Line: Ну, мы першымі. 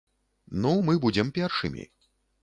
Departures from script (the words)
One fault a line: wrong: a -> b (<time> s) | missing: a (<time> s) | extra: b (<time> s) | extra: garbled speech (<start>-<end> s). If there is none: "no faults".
extra: будзем (1.1 s)